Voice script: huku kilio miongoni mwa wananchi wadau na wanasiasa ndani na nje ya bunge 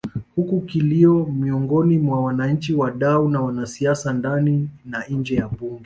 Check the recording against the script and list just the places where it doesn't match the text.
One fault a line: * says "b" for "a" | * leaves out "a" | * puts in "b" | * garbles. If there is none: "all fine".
all fine